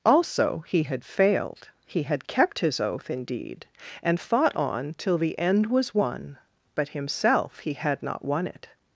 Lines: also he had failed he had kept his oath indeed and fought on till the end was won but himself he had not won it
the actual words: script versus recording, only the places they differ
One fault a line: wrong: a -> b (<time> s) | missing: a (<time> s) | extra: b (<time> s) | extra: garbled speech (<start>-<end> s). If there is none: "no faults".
no faults